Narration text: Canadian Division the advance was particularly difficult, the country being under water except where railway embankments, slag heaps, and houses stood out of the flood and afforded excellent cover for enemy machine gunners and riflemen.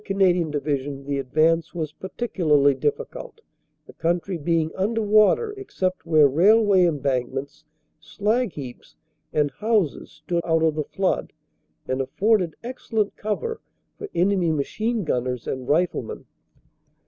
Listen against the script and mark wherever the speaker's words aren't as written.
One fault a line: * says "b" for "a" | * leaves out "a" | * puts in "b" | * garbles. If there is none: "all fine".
all fine